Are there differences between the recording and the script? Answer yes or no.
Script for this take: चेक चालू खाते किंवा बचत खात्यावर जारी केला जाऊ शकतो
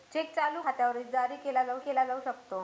yes